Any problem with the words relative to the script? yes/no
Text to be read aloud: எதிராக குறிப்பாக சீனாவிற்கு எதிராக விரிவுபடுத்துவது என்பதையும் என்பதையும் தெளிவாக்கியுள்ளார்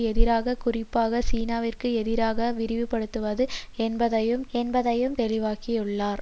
no